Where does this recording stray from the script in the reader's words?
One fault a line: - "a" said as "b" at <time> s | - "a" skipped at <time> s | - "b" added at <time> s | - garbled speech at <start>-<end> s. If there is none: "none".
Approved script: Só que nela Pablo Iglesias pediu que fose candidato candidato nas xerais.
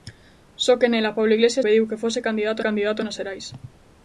none